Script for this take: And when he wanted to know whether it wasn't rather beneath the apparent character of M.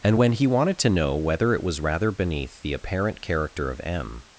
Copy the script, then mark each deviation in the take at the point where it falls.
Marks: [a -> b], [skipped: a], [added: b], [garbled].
And when he wanted to know whether it [wasn't -> was] rather beneath the apparent character of M.